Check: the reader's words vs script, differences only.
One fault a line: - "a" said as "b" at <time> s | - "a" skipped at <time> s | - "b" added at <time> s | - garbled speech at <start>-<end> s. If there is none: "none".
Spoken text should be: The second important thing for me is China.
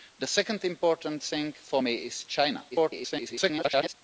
- garbled speech at 2.7-3.9 s